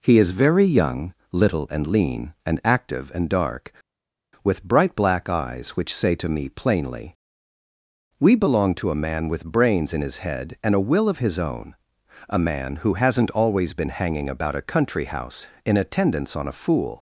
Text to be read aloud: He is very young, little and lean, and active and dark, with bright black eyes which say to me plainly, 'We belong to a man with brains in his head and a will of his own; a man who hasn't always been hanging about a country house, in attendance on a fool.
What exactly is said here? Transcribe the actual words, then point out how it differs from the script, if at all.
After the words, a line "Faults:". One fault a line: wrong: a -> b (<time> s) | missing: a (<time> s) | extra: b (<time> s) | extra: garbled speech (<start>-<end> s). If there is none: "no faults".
He is very young, little and lean, and active and dark, with bright black eyes which say to me plainly, 'We belong to a man with brains in his head and a will of his own; a man who hasn't always been hanging about a country house, in attendance on a fool.
Faults:
no faults